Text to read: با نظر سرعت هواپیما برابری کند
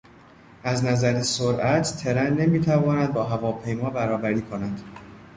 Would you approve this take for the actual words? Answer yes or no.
no